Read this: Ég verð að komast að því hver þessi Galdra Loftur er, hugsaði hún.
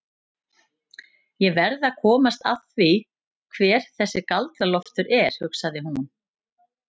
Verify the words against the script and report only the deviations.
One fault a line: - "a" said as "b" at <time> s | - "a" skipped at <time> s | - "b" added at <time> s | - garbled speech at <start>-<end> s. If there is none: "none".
none